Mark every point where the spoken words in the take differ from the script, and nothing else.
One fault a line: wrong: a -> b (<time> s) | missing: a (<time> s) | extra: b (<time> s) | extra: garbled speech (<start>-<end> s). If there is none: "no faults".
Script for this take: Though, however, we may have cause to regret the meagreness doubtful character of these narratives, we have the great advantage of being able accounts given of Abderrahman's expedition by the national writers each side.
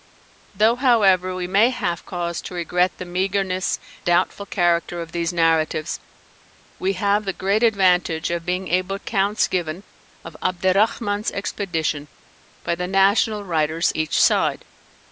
no faults